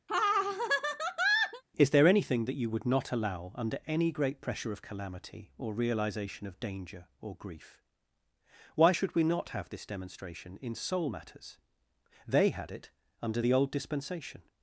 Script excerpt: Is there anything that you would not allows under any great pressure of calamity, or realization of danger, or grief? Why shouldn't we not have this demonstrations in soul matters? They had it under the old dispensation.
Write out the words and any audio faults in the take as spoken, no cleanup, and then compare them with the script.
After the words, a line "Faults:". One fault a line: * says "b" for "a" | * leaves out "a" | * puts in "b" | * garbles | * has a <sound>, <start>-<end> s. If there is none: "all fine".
Is there anything that you would not allow under any great pressure of calamity, or realization of danger, or grief? Why should we not have this demonstration in soul matters? They had it under the old dispensation.
Faults:
* has a laugh, 0.1-1.6 s
* says "allow" for "allows"
* says "should" for "shouldn't"
* says "demonstration" for "demonstrations"